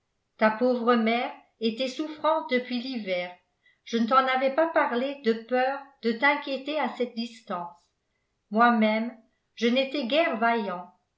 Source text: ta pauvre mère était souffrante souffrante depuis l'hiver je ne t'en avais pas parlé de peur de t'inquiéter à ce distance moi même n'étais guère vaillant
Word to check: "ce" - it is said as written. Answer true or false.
false